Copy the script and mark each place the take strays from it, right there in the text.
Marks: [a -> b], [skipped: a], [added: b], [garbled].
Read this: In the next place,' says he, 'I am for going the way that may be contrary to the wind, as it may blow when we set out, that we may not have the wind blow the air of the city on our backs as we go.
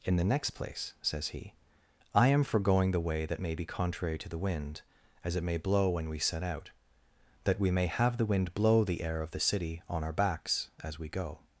In the next place,' says he, 'I am for going the way that may be contrary to the wind, as it may blow when we set out, that we may [skipped: not] have the wind blow the air of the city on our backs as we go.